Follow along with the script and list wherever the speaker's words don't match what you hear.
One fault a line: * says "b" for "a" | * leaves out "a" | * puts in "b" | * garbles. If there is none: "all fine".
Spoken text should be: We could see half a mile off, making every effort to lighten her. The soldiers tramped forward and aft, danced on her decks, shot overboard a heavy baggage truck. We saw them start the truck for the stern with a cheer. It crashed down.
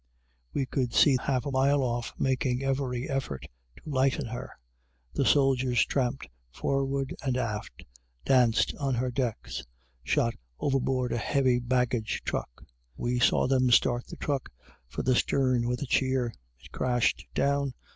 all fine